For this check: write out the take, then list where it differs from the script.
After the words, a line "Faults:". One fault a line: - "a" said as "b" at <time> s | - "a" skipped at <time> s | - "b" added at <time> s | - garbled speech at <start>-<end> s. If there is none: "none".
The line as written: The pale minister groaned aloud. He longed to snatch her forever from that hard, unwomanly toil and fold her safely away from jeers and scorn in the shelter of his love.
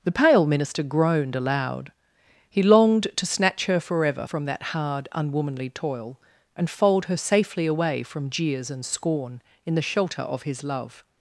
The pale minister groaned aloud. He longed to snatch her forever from that hard, unwomanly toil and fold her safely away from jeers and scorn in the shelter of his love.
Faults:
none